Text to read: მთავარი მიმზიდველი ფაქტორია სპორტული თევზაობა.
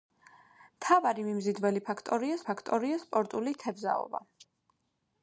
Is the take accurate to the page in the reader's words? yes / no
no